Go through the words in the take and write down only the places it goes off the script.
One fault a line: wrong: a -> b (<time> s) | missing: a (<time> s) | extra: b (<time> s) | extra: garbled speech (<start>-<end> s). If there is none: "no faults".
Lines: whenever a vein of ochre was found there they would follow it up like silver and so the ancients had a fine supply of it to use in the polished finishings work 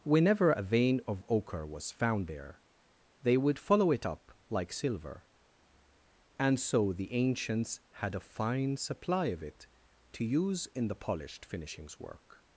no faults